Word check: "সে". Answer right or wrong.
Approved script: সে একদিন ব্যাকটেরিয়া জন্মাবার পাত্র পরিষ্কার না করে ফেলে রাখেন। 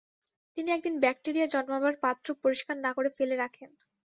wrong